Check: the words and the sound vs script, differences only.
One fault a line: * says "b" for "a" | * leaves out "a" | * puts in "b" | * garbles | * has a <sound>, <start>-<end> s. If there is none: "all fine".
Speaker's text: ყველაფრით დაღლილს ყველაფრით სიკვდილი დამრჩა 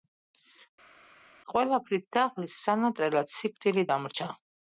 * says "სანატრელად" for "ყველაფრით"